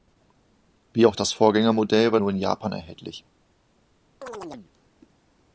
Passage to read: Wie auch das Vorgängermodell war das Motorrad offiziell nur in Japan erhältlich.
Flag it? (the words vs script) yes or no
yes